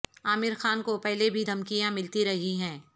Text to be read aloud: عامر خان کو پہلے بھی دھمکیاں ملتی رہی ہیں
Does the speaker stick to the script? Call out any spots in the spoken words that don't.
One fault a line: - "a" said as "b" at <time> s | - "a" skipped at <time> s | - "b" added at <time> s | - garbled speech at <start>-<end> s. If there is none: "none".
none